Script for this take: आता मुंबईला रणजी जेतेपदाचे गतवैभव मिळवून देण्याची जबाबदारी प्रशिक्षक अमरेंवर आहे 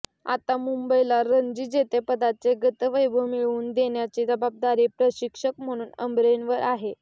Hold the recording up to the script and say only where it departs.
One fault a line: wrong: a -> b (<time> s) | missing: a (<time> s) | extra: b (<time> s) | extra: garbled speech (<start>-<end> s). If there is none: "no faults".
extra: म्हणून (5.6 s)